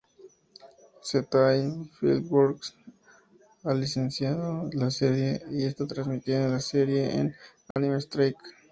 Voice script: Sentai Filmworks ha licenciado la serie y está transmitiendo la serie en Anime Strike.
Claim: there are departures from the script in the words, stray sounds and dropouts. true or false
true